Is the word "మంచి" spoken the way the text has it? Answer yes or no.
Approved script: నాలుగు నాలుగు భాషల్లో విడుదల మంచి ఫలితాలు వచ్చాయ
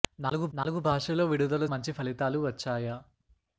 yes